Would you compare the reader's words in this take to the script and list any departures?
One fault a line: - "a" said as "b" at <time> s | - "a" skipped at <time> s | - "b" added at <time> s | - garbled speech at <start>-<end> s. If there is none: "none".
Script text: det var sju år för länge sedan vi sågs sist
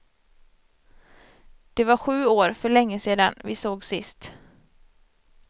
none